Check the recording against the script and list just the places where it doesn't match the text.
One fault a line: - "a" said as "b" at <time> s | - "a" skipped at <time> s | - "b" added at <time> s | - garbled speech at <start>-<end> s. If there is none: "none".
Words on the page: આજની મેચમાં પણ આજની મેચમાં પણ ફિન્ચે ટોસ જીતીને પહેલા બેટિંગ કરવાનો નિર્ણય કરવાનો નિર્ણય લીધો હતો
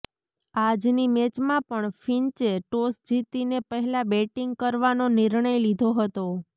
- "આજની મેચમાં પણ" skipped at 1.9 s
- "કરવાનો નિર્ણય" skipped at 5.6 s